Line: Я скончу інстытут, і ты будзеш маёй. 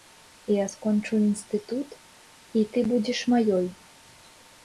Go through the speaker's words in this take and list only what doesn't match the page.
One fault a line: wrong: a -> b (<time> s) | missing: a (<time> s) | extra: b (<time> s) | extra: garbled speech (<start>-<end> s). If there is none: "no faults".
no faults